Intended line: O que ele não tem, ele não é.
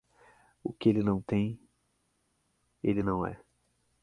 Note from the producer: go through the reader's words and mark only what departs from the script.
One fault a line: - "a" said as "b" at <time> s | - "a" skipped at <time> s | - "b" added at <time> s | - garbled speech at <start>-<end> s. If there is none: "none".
none